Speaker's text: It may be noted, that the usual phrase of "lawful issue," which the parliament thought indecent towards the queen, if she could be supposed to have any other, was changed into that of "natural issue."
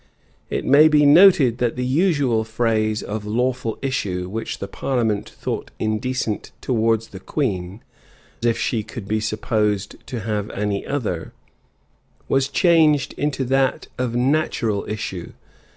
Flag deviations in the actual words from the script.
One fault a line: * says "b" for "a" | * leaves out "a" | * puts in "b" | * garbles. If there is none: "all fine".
all fine